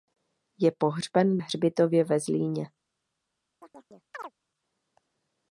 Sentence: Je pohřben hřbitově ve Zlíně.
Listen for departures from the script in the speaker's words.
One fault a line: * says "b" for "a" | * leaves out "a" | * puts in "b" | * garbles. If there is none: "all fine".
all fine